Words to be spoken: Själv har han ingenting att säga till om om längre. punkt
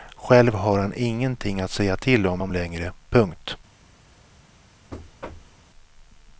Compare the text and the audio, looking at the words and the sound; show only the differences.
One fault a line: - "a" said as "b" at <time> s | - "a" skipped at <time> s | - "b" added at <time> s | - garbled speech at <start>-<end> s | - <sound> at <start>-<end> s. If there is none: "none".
- thud at 4.9-5.6 s